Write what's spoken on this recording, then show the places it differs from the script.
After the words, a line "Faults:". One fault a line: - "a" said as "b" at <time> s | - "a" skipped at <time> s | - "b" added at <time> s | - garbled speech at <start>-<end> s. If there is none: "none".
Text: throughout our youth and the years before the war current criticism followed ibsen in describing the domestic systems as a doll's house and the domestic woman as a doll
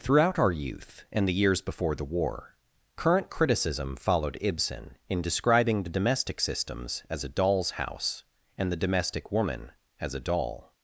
throughout our youth and the years before the war current criticism followed ibsen in describing the domestic systems as a doll's house and the domestic woman as a doll
Faults:
none